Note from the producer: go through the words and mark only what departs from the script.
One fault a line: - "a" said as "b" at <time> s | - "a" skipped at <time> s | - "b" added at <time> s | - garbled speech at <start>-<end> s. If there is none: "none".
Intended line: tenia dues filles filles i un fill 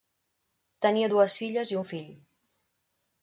- "filles" skipped at 1.7 s